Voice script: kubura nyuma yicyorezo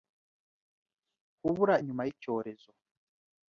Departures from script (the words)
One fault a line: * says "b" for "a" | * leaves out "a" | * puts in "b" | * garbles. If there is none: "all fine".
all fine